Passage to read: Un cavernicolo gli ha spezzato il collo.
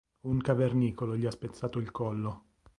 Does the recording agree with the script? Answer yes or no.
yes